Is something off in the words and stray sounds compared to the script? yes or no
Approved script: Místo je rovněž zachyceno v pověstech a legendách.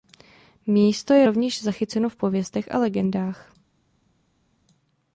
no